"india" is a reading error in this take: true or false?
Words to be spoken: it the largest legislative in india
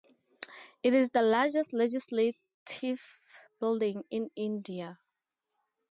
false